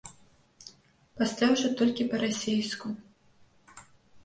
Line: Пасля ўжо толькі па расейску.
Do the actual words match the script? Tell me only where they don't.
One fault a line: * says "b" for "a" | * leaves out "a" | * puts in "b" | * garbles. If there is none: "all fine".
all fine